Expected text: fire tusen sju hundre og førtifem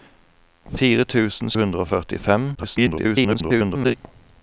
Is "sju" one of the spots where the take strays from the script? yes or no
yes